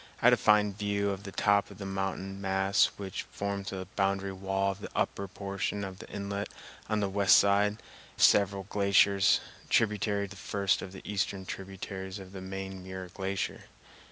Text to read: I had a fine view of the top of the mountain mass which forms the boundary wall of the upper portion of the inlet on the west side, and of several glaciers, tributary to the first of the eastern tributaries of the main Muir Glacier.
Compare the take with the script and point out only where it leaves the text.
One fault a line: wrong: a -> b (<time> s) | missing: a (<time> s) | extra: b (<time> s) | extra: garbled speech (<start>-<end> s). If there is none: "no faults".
missing: and (7.8 s)
missing: to (10.3 s)